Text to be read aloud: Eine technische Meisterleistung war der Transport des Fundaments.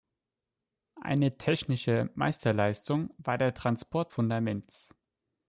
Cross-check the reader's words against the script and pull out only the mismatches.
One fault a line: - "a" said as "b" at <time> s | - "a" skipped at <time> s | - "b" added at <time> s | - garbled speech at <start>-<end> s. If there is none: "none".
- "des" skipped at 4.1 s